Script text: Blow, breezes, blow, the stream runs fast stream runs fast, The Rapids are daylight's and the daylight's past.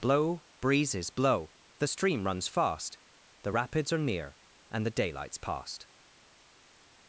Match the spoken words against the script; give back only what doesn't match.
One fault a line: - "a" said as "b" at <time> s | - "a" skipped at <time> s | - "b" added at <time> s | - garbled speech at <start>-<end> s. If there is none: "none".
- "stream runs fast" skipped at 3.0 s
- "daylight's" said as "near" at 4.0 s